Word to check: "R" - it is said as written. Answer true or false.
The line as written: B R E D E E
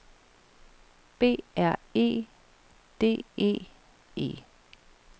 true